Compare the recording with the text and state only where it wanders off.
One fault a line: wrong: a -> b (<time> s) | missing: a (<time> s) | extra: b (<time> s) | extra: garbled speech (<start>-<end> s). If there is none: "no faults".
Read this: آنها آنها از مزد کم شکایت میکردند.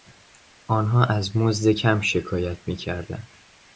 missing: آنها (1.1 s)